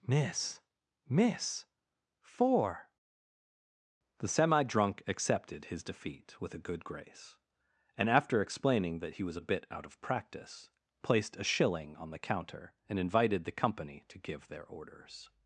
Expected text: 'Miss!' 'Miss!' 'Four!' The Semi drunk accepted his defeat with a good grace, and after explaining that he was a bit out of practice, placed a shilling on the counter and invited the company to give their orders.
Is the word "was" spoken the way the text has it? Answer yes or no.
yes